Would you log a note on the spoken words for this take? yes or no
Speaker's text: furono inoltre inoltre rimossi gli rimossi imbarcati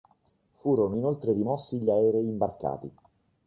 yes